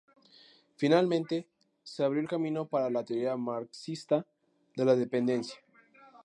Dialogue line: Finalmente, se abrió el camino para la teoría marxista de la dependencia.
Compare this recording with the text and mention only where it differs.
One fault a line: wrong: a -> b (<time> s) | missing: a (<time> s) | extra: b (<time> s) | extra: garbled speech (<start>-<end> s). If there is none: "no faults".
no faults